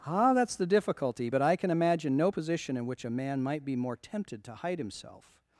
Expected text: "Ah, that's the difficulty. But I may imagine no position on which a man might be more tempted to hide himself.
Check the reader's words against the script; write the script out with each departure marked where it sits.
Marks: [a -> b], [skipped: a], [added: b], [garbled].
"Ah, that's the difficulty. But I [may -> can] imagine no position [on -> in] which a man might be more tempted to hide himself.